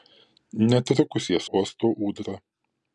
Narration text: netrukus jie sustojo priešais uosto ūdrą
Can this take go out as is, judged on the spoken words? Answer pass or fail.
fail